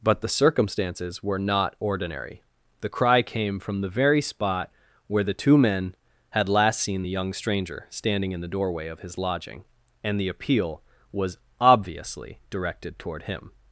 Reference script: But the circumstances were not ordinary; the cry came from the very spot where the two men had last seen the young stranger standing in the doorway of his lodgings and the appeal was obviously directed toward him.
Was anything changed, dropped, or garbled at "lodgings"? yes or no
yes